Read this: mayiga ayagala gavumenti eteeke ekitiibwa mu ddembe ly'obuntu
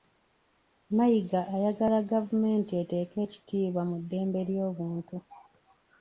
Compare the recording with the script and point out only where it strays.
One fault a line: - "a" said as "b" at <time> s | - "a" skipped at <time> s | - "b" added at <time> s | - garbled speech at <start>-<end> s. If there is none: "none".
none